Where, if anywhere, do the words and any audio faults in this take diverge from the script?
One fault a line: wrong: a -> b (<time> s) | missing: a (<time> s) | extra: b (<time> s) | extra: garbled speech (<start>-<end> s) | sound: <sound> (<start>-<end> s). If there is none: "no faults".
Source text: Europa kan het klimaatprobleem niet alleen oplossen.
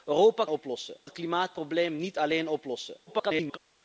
wrong: kan -> oplossen (0.5 s)
extra: garbled speech (3.1-3.6 s)